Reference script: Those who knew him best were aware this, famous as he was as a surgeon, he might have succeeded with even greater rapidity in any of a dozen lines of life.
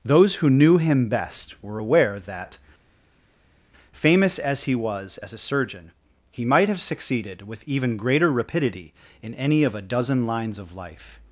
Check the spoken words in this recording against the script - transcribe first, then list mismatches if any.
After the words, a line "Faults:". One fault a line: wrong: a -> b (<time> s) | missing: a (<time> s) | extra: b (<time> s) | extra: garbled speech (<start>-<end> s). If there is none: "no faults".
Those who knew him best were aware that, famous as he was as a surgeon, he might have succeeded with even greater rapidity in any of a dozen lines of life.
Faults:
wrong: this -> that (2.2 s)